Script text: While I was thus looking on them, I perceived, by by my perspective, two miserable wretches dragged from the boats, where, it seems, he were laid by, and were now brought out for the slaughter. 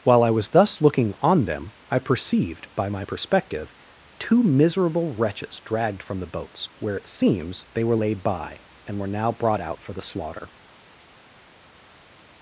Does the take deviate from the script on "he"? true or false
true